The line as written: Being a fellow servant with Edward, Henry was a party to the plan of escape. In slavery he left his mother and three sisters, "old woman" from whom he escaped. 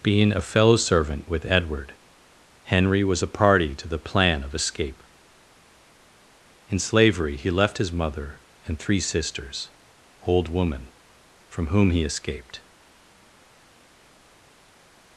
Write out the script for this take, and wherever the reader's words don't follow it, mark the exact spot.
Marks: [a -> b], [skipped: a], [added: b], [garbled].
Being a fellow servant with Edward, Henry was a party to the plan of escape. In slavery he left his mother and three sisters, "old woman" from whom he escaped.